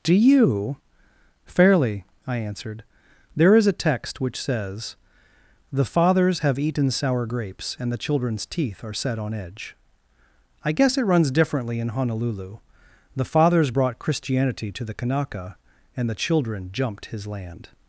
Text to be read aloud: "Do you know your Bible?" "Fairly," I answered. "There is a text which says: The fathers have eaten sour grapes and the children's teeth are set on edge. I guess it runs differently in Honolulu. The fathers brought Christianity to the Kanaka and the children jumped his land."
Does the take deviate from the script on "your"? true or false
true